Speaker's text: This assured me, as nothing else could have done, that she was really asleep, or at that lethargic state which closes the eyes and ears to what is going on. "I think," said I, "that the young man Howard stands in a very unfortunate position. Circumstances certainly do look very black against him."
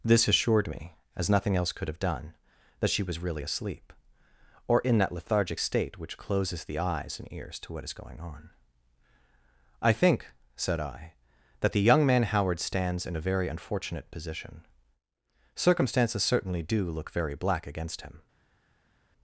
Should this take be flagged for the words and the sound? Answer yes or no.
yes